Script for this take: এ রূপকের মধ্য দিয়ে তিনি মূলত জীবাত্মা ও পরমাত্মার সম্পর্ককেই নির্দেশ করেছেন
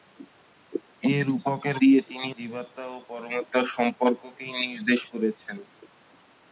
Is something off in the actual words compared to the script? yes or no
yes